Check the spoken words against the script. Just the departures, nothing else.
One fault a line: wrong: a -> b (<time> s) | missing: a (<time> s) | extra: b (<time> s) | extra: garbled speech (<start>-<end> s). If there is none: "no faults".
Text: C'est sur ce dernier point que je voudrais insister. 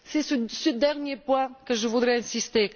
no faults